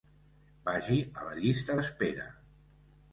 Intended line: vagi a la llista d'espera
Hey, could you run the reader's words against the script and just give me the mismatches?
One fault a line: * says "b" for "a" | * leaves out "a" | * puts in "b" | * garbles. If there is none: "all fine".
all fine